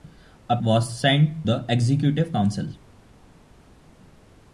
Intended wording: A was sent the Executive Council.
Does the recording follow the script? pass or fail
pass